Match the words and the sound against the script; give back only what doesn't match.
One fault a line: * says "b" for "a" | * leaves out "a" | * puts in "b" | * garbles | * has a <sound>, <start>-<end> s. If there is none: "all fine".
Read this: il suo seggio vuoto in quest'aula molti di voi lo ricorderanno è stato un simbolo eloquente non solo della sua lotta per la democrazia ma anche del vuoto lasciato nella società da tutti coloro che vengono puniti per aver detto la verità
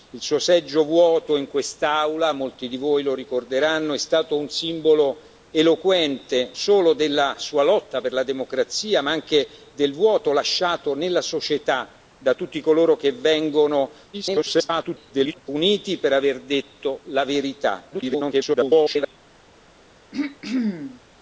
* leaves out "non"
* garbles
* garbles
* has a throat clearing, 20.1-21.0 s